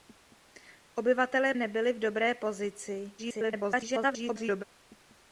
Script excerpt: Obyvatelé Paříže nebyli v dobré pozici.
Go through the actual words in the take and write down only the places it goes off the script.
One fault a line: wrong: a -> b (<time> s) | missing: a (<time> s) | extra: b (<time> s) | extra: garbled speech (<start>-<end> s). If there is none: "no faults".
missing: Paříže (1.6 s)
extra: garbled speech (3.2-4.6 s)